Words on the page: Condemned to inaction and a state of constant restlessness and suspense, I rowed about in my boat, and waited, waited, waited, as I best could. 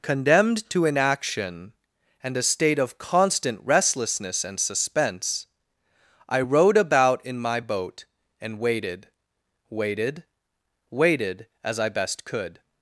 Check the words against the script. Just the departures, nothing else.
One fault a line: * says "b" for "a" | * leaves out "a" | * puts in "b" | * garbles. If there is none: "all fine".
all fine